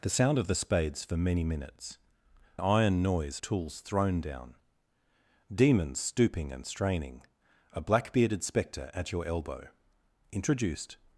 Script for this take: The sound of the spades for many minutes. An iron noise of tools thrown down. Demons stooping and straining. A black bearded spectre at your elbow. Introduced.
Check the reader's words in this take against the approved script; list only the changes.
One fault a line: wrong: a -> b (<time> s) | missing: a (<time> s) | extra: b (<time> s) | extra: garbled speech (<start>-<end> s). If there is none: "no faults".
missing: An (2.0 s)
missing: of (3.4 s)